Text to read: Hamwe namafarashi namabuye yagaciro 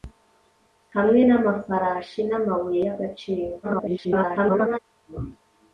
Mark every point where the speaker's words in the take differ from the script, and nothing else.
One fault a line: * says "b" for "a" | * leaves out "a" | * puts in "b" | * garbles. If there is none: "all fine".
* garbles